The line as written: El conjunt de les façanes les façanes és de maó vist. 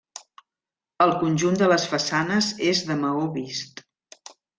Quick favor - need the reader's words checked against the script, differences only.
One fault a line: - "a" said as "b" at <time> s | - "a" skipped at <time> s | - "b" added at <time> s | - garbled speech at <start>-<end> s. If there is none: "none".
- "les façanes" skipped at 2.5 s